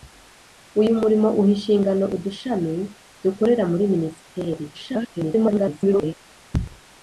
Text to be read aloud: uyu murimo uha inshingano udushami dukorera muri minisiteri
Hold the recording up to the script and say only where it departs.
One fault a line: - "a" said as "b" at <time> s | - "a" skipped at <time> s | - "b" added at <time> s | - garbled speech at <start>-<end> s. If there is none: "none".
- garbled speech at 4.7-6.1 s